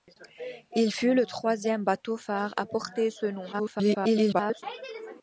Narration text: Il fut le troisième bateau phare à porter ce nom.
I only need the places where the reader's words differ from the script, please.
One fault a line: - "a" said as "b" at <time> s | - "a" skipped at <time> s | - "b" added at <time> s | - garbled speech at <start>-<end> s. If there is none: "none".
- garbled speech at 3.5-4.6 s